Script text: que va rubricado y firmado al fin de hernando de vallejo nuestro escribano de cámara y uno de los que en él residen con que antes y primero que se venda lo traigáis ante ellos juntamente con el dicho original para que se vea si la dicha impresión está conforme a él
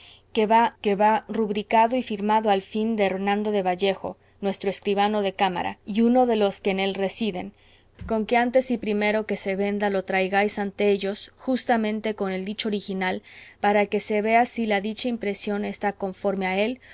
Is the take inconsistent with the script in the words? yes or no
yes